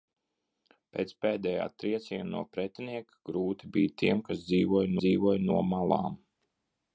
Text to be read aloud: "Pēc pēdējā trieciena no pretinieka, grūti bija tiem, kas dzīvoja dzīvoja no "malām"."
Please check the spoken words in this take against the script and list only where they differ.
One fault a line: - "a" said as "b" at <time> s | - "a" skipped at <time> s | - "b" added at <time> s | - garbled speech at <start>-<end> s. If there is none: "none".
none